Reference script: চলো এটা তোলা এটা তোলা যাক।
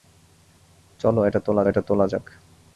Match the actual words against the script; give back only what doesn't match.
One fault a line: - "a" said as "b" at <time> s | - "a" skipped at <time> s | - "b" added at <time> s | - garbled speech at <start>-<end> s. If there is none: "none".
none